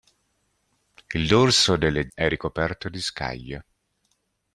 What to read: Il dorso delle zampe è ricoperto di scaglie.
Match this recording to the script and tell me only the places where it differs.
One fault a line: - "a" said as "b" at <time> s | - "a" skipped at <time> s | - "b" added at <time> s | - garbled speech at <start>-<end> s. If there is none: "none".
- "zampe" skipped at 2.1 s